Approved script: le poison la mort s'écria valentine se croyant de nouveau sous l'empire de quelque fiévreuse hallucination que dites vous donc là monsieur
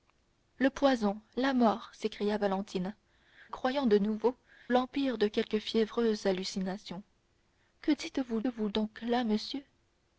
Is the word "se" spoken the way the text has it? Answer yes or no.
no